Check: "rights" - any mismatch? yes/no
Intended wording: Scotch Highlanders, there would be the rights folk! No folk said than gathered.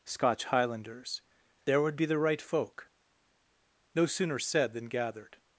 yes